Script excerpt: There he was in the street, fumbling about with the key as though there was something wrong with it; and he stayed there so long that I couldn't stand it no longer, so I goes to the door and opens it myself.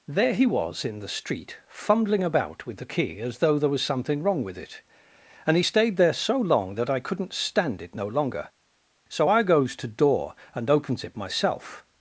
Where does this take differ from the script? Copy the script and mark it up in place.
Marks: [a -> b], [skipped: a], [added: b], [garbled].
There he was in the street, fumbling about with the key as though there was something wrong with it; and he stayed there so long that I couldn't stand it no longer, so I goes to [skipped: the] door and opens it myself.